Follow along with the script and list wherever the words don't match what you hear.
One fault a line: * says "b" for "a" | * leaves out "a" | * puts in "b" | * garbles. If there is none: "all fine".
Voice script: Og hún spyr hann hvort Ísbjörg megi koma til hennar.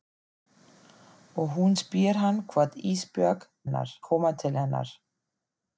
* says "hennar" for "megi"